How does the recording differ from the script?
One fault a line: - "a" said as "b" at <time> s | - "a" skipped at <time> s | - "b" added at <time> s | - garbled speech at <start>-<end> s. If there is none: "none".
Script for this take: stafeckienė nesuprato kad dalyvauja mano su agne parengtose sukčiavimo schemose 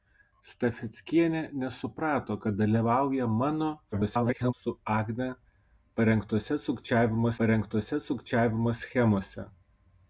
- garbled speech at 3.9-4.5 s
- "parengtose sukčiavimo" added at 7.4 s